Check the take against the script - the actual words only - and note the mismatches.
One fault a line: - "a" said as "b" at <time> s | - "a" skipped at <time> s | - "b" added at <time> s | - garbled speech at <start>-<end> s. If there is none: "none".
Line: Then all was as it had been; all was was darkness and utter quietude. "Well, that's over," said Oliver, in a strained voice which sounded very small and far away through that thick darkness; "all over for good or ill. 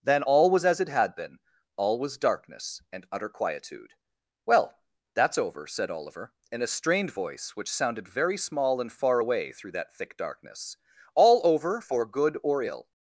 - "was" skipped at 2.2 s